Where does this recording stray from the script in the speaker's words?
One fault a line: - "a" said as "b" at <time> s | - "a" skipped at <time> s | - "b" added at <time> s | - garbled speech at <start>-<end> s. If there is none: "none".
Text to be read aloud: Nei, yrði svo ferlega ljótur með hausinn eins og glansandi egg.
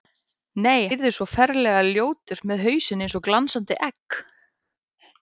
none